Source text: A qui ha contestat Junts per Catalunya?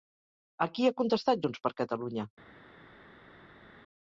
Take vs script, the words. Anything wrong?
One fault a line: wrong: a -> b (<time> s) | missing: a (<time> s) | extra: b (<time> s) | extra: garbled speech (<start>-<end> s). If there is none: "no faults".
no faults